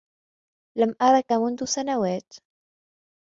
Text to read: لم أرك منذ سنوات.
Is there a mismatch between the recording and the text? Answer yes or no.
no